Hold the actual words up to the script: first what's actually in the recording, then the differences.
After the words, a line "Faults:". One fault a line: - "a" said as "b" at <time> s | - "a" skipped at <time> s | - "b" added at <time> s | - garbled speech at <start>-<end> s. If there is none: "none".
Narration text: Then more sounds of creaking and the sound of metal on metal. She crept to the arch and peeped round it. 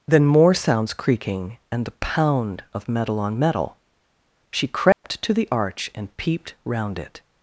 Then more sounds creaking and the pound of metal on metal. She crept to the arch and peeped round it.
Faults:
- "of" skipped at 0.9 s
- "sound" said as "pound" at 1.9 s